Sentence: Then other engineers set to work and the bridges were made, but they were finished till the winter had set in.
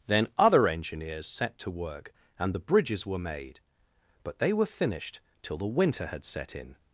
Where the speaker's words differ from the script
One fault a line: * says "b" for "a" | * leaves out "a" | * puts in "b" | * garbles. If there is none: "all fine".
all fine